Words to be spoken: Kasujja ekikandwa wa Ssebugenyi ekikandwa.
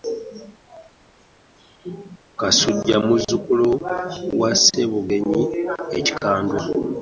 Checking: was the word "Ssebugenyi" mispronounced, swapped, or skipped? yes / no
no